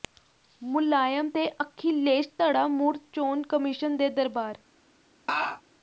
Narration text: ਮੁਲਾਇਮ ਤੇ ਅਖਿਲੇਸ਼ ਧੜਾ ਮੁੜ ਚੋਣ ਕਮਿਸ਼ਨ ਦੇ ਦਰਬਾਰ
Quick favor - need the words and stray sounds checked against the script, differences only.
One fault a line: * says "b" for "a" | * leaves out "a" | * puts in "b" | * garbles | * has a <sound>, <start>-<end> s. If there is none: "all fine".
* has a laugh, 5.3-5.6 s